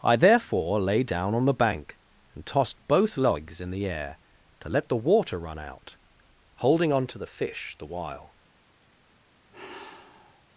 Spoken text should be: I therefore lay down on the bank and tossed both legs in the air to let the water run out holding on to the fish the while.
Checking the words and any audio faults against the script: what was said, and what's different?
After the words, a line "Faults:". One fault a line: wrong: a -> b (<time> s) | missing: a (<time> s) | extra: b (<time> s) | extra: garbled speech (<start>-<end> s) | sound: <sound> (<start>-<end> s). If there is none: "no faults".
I therefore lay down on the bank and tossed both legs in the air to let the water run out holding on to the fish the while.
Faults:
sound: sigh (9.5-10.4 s)